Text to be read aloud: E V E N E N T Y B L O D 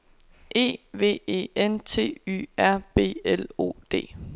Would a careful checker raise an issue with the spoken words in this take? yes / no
yes